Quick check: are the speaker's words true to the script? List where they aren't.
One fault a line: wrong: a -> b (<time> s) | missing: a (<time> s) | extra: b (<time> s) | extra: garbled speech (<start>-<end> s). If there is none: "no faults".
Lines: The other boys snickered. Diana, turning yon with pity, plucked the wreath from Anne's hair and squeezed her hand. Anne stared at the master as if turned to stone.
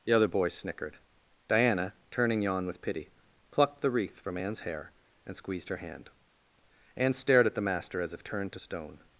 no faults